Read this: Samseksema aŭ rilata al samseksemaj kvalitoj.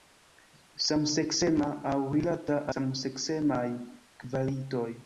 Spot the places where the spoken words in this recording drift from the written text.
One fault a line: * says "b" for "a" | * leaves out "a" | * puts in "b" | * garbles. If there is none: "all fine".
* leaves out "al"